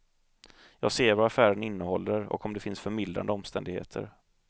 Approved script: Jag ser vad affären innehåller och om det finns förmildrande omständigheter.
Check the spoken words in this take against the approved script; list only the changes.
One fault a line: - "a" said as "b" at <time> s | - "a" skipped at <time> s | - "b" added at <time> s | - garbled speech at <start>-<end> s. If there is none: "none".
none